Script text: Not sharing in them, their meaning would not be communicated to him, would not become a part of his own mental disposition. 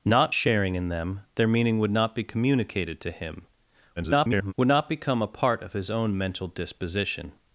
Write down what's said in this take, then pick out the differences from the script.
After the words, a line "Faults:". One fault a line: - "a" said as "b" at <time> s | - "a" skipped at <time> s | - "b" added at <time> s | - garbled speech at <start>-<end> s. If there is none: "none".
Not sharing in them, their meaning would not be communicated to him, [garbled] would not become a part of his own mental disposition.
Faults:
- garbled speech at 4.0-4.5 s